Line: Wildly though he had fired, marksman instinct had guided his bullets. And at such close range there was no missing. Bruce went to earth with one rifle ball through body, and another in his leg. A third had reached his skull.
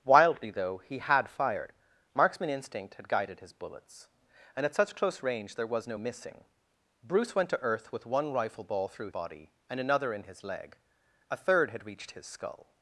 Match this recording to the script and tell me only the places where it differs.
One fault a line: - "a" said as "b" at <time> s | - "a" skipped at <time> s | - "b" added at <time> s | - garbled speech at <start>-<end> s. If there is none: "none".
none